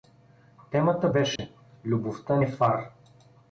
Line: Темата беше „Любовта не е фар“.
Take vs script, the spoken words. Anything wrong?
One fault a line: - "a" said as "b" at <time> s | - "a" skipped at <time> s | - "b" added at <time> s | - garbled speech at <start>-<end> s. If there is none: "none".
- "не" skipped at 2.4 s